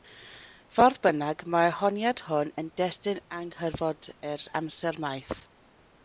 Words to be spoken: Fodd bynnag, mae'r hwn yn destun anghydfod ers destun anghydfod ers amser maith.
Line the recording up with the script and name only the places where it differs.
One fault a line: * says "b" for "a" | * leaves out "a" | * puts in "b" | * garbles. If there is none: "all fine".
* puts in "honiad"
* leaves out "destun anghydfod ers"